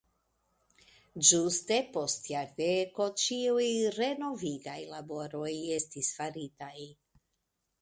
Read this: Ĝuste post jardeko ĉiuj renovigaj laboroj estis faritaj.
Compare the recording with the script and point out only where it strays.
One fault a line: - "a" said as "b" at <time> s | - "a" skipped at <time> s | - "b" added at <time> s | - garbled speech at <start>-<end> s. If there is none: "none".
none